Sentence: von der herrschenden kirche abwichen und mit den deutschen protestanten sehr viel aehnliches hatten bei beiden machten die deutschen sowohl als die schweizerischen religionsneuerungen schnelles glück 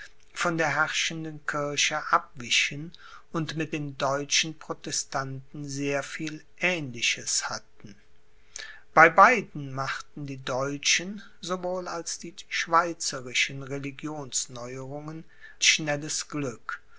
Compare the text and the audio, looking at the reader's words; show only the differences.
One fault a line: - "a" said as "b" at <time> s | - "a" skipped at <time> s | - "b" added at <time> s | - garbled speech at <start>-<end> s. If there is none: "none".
none